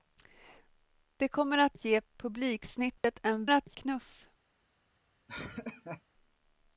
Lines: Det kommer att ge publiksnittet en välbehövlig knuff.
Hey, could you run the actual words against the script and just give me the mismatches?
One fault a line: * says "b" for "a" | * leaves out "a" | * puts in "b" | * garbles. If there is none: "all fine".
* says "att" for "välbehövlig"